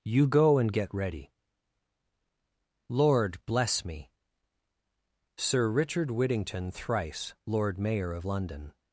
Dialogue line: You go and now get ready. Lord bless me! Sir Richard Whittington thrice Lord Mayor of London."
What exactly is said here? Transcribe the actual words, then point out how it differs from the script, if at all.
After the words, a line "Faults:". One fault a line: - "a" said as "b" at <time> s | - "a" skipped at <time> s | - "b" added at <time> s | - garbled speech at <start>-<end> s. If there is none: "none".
You go and get ready. Lord bless me! Sir Richard Whittington thrice Lord Mayor of London."
Faults:
- "now" skipped at 0.7 s